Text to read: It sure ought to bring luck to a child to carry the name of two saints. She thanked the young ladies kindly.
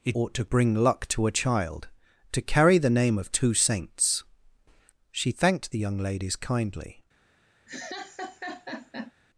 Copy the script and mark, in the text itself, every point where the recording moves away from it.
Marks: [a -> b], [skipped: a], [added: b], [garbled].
It [skipped: sure] ought to bring luck to a child to carry the name of two saints. She thanked the young ladies kindly.